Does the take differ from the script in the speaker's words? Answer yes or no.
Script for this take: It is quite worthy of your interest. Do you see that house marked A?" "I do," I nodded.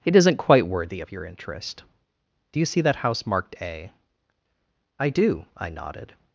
yes